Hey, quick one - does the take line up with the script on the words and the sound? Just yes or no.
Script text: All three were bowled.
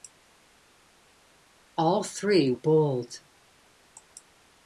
no